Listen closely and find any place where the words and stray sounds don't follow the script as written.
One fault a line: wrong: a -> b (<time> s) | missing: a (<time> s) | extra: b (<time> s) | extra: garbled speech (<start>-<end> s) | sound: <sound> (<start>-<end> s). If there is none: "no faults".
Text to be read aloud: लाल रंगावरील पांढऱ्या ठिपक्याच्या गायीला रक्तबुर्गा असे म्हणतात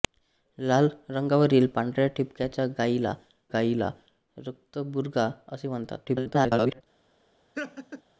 extra: गायीला (3.5 s)
extra: garbled speech (6.0-6.8 s)
sound: laugh (7.6-8.0 s)